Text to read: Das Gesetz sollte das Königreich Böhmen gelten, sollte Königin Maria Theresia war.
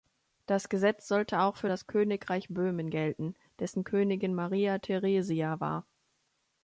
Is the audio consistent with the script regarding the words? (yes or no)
no